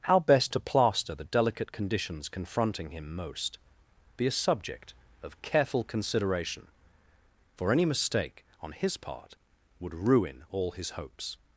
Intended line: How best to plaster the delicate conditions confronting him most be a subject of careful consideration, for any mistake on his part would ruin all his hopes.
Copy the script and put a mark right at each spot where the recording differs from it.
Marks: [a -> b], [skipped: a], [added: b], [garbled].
How best to plaster the delicate conditions confronting him most be a subject of careful consideration, for any mistake on his part would ruin all his hopes.